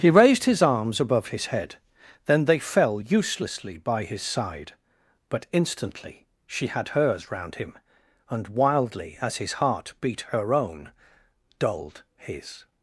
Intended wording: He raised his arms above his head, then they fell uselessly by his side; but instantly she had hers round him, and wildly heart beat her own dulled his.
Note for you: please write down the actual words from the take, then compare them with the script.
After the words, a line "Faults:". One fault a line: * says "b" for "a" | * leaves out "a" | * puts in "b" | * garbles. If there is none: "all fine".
He raised his arms above his head, then they fell uselessly by his side; but instantly she had hers round him, and wildly as his heart beat her own dulled his.
Faults:
* puts in "as his"